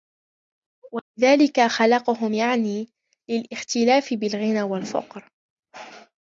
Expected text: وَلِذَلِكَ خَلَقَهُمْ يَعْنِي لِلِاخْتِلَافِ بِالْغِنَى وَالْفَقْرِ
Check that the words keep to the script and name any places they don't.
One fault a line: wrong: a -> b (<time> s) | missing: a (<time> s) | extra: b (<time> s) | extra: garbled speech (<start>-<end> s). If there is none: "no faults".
no faults